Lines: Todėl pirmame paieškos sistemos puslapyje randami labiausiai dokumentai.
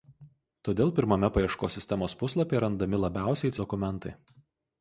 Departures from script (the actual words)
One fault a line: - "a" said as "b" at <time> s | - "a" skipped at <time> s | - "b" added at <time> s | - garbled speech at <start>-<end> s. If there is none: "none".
none